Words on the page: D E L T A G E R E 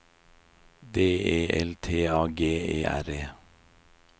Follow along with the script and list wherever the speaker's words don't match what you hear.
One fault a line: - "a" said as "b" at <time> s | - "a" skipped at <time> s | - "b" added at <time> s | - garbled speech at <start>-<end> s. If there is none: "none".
none